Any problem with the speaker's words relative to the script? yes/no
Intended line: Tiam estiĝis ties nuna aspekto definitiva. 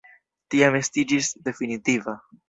yes